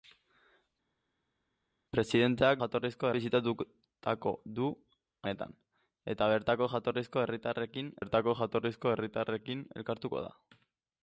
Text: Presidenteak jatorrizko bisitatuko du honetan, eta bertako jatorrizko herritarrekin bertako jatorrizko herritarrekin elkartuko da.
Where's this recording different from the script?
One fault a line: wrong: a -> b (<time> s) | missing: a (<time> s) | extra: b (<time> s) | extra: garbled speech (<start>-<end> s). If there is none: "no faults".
no faults